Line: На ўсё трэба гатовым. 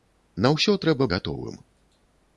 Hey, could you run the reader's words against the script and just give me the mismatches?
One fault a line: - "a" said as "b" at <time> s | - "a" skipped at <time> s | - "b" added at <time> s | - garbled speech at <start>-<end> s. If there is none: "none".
none